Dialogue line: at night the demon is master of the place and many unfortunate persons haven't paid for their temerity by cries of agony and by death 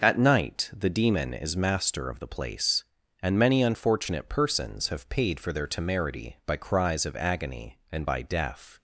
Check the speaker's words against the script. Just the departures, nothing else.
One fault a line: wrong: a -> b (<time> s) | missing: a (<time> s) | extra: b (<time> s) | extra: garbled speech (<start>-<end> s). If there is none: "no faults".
wrong: haven't -> have (4.9 s)